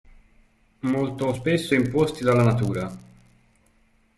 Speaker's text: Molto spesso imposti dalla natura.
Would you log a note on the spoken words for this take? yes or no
no